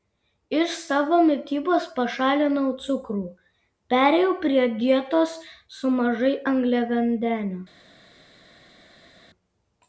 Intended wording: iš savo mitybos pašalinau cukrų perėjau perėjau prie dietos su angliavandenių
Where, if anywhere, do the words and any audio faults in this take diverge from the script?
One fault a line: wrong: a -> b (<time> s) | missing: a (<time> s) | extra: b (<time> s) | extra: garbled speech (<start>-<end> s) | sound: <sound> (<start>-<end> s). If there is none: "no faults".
missing: perėjau (4.3 s)
extra: mažai (6.0 s)